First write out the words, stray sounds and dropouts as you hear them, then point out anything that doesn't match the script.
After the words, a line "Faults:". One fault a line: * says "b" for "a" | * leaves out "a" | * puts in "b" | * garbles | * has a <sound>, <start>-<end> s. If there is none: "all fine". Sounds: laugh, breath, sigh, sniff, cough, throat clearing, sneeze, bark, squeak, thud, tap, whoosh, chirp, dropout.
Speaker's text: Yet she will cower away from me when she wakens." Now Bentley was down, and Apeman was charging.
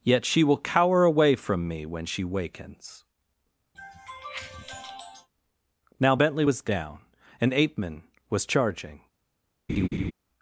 Yet she will cower away from me when she wakens." Now Bentley was down, and Apeman was charging.
Faults:
* has a sniff, 3.7-5.3 s
* has a laugh, 9.7-10.1 s